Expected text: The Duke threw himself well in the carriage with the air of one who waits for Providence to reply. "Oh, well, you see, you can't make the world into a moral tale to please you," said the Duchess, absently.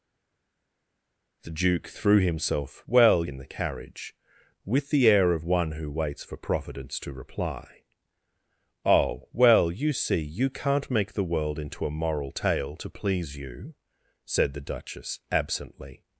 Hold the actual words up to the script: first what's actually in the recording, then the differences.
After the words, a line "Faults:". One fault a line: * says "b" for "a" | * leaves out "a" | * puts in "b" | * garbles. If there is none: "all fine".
The Duke threw himself well in the carriage with the air of one who waits for Providence to reply. "Oh, well, you see, you can't make the world into a moral tale to please you," said the Duchess, absently.
Faults:
all fine